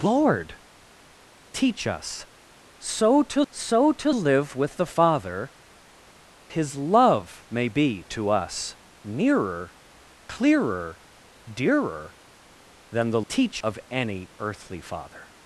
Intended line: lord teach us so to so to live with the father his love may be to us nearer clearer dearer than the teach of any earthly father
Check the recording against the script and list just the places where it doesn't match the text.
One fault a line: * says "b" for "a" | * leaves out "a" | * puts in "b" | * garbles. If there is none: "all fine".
all fine